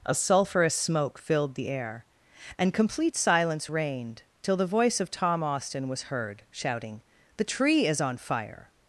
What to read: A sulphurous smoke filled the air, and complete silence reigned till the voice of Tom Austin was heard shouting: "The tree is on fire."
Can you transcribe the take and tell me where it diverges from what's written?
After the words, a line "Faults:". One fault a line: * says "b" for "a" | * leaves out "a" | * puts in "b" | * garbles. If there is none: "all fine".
A sulphurous smoke filled the air, and complete silence reigned till the voice of Tom Austin was heard shouting: "The tree is on fire."
Faults:
all fine